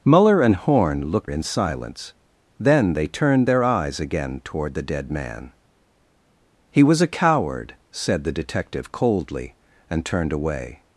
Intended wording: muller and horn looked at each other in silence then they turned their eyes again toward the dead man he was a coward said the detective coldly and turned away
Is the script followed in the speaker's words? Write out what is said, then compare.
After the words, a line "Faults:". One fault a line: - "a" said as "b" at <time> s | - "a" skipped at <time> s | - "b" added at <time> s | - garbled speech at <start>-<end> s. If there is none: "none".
muller and horn looked in silence then they turned their eyes again toward the dead man he was a coward said the detective coldly and turned away
Faults:
- "at each other" skipped at 1.3 s